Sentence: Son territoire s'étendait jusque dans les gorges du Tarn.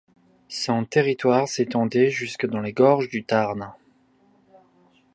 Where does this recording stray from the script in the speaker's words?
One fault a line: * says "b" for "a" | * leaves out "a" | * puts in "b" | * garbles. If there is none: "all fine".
all fine